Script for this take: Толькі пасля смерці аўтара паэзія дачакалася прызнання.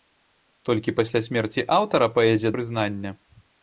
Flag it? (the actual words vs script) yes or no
yes